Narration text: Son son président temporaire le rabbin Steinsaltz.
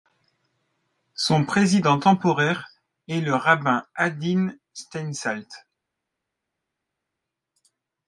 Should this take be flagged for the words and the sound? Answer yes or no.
yes